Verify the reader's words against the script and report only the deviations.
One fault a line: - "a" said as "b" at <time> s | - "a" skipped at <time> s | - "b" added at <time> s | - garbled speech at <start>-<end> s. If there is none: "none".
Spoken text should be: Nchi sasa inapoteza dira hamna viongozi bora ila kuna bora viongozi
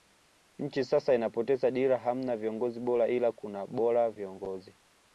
none